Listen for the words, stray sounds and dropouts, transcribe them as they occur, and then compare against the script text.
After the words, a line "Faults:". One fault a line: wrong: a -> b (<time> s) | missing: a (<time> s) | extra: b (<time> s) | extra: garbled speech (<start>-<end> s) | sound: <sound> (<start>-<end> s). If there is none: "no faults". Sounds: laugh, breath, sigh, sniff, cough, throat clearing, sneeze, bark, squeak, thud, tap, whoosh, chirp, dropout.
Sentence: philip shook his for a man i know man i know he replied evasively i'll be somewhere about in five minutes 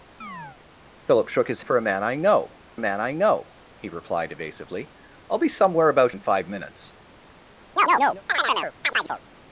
philip shook his for a man i know man i know he replied evasively i'll be somewhere about in five minutes
Faults:
sound: chirp (0.2-0.6 s)
sound: chirp (7.8-9.2 s)